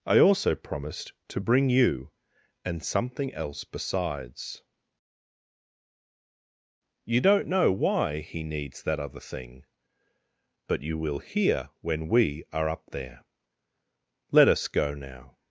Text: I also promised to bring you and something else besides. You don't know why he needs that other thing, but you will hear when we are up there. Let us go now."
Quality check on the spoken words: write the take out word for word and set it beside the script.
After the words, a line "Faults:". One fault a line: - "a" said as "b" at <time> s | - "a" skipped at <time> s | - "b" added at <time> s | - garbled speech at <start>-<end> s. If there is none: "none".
I also promised to bring you and something else besides. You don't know why he needs that other thing, but you will hear when we are up there. Let us go now."
Faults:
none